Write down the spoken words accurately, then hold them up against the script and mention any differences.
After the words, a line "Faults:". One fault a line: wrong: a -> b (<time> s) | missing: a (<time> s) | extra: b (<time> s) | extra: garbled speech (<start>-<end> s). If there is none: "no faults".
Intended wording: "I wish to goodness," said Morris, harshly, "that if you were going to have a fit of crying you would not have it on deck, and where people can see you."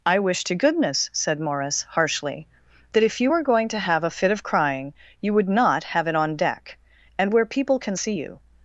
"I wish to goodness," said Morris, harshly, "that if you were going to have a fit of crying you would not have it on deck, and where people can see you."
Faults:
no faults